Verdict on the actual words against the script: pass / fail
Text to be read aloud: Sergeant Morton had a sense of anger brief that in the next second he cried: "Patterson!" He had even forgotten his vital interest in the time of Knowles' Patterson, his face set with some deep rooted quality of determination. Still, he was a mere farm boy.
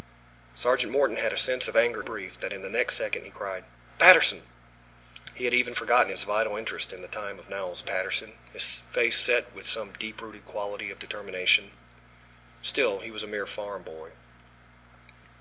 pass